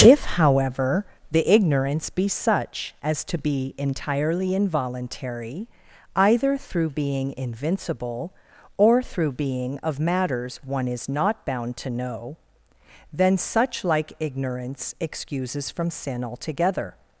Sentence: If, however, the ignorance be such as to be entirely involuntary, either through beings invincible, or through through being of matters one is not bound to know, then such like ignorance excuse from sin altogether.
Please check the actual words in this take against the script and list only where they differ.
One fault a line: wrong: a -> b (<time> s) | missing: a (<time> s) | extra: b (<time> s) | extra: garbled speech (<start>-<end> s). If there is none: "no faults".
wrong: beings -> being (6.9 s)
missing: through (9.3 s)
wrong: excuse -> excuses (15.0 s)